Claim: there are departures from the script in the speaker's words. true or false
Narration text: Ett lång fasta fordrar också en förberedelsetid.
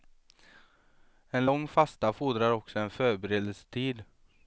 true